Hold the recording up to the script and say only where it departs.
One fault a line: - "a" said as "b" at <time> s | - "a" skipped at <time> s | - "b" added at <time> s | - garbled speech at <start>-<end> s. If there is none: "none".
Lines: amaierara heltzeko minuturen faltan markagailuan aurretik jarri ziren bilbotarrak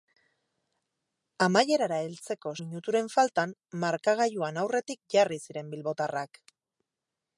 none